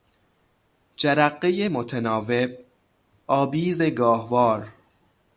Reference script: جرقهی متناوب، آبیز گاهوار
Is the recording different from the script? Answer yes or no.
no